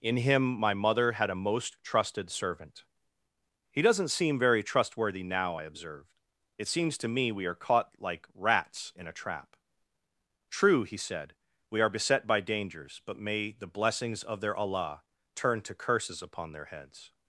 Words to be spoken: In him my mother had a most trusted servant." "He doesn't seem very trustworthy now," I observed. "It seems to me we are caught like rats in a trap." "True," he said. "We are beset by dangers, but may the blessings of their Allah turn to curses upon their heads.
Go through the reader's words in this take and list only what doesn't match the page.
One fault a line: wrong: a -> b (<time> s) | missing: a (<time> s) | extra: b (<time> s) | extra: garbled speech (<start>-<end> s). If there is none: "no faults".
no faults